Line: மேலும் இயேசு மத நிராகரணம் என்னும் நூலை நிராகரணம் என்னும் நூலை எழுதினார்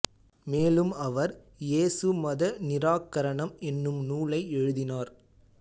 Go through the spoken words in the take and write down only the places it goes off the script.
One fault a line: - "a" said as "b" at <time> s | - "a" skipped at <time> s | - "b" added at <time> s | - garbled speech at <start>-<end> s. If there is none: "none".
- "அவர்" added at 1.0 s
- "நிராகரணம் என்னும் நூலை" skipped at 4.4 s